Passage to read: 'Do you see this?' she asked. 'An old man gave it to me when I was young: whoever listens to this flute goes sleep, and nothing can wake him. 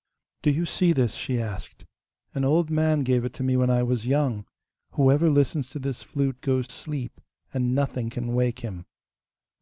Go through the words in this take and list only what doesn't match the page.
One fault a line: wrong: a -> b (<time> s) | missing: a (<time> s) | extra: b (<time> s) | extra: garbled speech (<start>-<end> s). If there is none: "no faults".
no faults